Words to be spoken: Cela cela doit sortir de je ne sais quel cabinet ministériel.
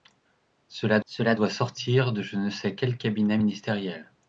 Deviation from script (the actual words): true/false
false